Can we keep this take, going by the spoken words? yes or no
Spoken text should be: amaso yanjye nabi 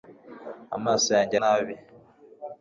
yes